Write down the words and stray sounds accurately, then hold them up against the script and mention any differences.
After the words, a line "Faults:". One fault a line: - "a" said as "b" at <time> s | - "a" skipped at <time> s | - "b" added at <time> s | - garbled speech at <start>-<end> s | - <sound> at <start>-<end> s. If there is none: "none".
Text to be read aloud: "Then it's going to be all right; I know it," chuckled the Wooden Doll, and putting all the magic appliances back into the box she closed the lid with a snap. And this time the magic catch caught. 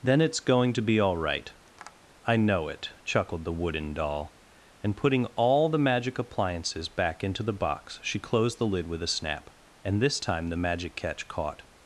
"Then it's going to be all right; I know it," chuckled the Wooden Doll, and putting all the magic appliances back into the box she closed the lid with a snap. And this time the magic catch caught.
Faults:
- tap at 1.7-2.0 s